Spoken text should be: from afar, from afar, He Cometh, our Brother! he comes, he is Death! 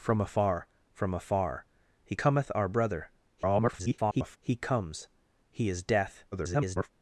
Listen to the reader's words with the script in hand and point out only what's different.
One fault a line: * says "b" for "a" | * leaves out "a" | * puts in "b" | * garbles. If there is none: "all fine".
* garbles
* garbles